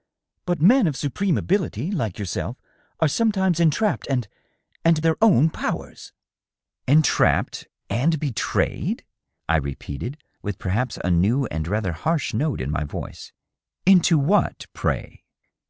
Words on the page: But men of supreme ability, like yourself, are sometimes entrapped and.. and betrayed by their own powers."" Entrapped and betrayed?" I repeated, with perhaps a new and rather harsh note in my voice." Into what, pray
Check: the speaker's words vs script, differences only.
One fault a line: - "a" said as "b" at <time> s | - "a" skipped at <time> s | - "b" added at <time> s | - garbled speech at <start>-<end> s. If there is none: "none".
- "betrayed by" skipped at 5.0 s